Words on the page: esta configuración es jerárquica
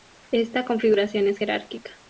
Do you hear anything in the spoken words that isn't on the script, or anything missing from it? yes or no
no